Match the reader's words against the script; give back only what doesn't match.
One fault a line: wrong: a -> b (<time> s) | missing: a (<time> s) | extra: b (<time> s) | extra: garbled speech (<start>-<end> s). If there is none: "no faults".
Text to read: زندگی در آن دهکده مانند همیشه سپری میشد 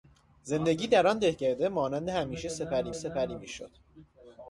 extra: سپری (2.9 s)